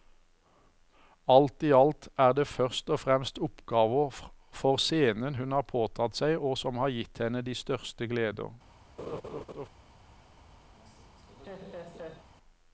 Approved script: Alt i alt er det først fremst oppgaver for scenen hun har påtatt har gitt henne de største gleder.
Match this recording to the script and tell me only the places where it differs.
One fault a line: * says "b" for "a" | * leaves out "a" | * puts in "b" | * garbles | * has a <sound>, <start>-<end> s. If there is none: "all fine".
* puts in "og"
* puts in "seg og som"
* has a laugh, 9.0-9.7 s
* has a laugh, 10.7-12.3 s